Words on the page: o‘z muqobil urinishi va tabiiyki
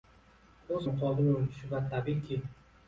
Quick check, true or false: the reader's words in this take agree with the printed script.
true